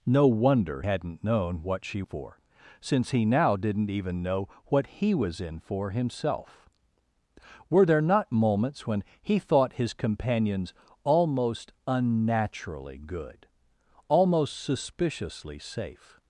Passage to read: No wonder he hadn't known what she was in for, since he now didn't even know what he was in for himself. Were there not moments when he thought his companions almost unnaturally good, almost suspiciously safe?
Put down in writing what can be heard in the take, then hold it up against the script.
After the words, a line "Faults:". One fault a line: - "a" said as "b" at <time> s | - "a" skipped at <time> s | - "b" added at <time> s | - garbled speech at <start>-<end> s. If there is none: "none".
No wonder hadn't known what she for, since he now didn't even know what he was in for himself. Were there not moments when he thought his companions almost unnaturally good, almost suspiciously safe?
Faults:
- "he" skipped at 0.8 s
- "was in" skipped at 2.0 s